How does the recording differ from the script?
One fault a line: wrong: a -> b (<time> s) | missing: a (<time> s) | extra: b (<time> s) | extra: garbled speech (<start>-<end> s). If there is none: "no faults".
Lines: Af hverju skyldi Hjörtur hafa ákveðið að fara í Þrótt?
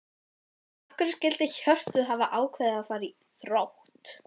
no faults